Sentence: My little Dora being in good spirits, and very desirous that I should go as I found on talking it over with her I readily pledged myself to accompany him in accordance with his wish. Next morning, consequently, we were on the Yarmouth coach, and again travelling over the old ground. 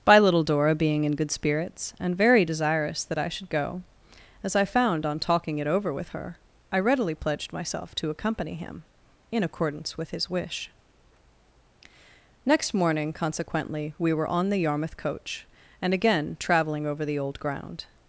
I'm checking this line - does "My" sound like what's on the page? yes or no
no